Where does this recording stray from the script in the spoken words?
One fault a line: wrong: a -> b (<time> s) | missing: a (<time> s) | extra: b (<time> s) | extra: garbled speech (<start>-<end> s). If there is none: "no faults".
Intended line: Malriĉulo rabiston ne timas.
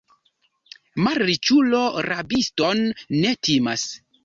no faults